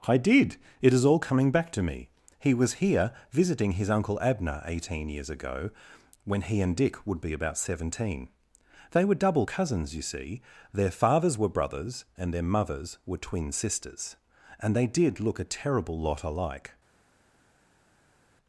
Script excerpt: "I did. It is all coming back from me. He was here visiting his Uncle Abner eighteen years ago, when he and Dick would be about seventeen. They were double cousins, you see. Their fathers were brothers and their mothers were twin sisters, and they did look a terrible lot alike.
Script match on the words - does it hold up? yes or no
no